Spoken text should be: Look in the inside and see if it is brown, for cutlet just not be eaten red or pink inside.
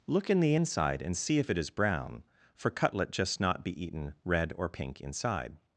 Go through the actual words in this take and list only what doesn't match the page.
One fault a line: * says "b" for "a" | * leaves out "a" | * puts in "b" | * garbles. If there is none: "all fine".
all fine